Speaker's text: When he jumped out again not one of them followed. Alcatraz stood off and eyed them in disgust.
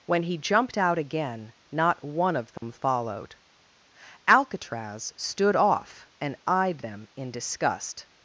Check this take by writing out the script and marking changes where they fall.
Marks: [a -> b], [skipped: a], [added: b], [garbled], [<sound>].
When he jumped out again not one of them [dropout] followed. Alcatraz stood off and eyed them in disgust.